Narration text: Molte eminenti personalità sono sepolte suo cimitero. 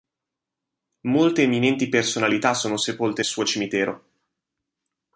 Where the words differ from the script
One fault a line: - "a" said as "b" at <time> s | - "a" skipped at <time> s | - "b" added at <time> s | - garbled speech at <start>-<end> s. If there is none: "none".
none